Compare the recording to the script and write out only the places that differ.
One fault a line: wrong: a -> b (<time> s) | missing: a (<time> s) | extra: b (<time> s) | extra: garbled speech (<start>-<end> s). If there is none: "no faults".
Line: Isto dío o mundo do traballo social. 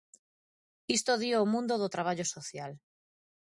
no faults